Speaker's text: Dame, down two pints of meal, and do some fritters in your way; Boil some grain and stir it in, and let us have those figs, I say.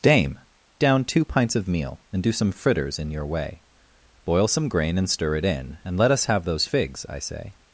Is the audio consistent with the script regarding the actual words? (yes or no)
yes